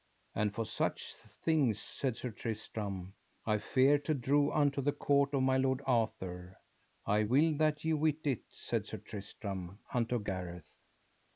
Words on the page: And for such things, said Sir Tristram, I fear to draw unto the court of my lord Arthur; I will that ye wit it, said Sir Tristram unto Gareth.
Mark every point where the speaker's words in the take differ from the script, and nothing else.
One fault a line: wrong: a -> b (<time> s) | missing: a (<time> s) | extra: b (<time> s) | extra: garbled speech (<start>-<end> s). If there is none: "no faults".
no faults